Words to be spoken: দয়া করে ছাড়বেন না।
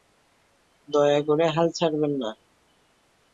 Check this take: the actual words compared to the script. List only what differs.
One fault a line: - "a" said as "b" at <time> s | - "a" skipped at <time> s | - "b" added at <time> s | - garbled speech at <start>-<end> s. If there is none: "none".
- "হাল" added at 1.6 s